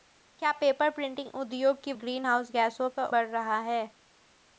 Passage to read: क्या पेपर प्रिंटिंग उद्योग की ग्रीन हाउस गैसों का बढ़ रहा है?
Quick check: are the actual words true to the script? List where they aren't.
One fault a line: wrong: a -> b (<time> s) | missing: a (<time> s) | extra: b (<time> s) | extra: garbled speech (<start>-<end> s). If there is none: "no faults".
no faults